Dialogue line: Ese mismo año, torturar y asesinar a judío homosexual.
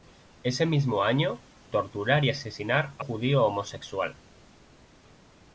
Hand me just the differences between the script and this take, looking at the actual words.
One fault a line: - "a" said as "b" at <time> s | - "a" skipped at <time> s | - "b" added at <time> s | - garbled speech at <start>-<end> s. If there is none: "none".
none